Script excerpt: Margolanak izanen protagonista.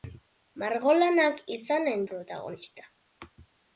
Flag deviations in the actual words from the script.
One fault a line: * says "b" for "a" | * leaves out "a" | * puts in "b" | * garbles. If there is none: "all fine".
all fine